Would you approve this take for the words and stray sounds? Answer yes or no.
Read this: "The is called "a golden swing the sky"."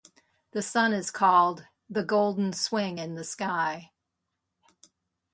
no